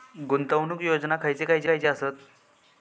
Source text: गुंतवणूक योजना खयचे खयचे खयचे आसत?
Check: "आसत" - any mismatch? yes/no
no